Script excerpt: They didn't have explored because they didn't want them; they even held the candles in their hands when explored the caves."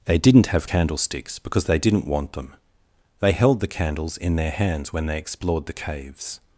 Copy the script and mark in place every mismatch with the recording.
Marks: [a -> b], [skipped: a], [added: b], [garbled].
They didn't have [explored -> candlesticks] because they didn't want them; they [skipped: even] held the candles in their hands when [added: they] explored the caves."